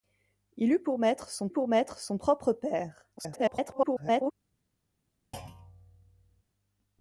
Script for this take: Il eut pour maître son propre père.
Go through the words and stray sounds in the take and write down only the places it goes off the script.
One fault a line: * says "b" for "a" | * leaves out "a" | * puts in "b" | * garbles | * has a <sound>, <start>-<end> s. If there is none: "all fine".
* puts in "pour maître son"
* garbles
* has a thud, 5.3-6.4 s